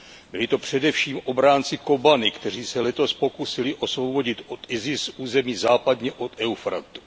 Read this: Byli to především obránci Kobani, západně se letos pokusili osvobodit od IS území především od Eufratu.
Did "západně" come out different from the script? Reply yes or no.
yes